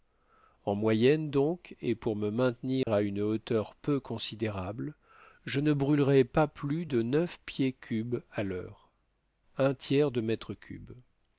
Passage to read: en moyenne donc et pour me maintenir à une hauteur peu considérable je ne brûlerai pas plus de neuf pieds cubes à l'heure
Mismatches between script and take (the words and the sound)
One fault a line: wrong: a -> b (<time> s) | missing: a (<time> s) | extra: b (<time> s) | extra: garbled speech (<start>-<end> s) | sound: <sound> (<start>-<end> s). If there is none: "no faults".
sound: dropout (2.8-2.9 s)